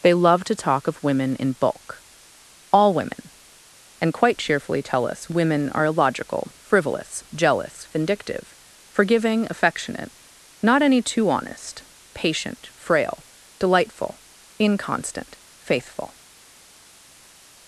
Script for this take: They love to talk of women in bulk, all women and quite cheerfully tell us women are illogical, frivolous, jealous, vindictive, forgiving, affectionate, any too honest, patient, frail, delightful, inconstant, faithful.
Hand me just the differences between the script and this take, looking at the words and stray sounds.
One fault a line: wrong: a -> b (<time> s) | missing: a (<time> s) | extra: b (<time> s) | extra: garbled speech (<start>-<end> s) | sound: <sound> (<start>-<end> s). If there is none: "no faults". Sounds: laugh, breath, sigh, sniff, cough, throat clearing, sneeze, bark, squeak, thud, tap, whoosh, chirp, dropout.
extra: not (10.6 s)